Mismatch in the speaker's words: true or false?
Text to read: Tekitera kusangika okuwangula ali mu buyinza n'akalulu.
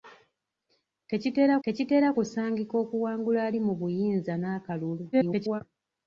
true